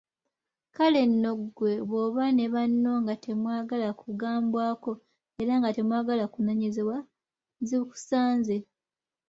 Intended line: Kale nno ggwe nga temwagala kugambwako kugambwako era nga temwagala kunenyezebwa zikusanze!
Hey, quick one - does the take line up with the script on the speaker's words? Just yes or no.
no